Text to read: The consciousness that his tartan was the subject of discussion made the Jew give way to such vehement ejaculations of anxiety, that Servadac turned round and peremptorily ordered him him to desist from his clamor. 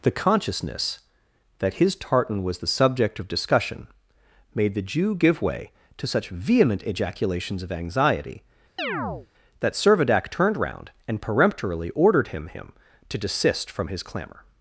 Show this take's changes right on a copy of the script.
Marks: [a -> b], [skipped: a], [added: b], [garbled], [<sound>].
The consciousness that his tartan was the subject of discussion made the Jew give way to such vehement ejaculations of anxiety, [chirp] that Servadac turned round and peremptorily ordered him him to desist from his clamor.